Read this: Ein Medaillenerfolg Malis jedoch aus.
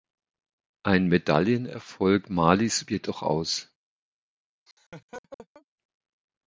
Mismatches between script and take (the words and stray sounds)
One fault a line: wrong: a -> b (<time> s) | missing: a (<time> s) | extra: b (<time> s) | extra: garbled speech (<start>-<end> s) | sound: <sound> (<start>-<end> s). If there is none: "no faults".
sound: laugh (4.7-5.7 s)